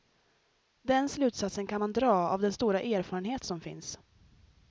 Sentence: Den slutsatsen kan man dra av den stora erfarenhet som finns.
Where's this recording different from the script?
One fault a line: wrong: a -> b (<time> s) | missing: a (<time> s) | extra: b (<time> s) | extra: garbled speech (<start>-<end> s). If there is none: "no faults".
no faults